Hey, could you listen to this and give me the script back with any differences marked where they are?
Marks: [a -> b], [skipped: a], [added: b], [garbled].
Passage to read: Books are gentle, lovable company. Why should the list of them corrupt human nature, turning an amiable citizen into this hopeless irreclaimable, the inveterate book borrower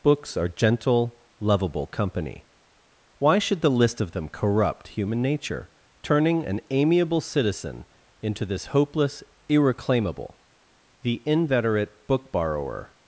Books are gentle, lovable company. Why should the list of them corrupt human nature, turning an amiable citizen into this hopeless irreclaimable, the inveterate book borrower